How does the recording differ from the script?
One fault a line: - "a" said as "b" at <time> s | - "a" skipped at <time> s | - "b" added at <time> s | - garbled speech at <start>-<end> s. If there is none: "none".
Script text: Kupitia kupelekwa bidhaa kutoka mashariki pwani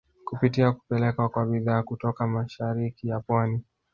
- "kwa" added at 1.3 s
- "ya" added at 3.1 s